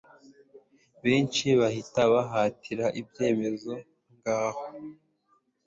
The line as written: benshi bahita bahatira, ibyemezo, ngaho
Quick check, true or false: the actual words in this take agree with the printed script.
true